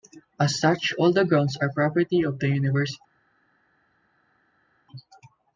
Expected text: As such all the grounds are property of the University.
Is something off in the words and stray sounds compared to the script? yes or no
no